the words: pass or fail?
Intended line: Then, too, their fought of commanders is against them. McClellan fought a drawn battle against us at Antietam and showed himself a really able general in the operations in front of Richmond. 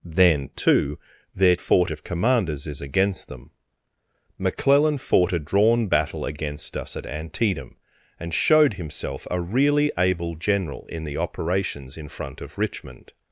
pass